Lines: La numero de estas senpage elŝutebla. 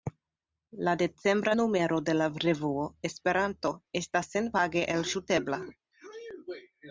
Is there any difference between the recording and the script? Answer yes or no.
yes